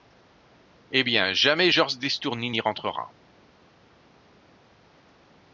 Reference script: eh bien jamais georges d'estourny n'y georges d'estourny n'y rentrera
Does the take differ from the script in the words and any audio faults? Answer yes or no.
yes